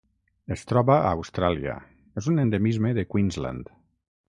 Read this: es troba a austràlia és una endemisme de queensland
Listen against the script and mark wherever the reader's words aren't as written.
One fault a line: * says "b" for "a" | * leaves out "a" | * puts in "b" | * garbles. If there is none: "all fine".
* says "un" for "una"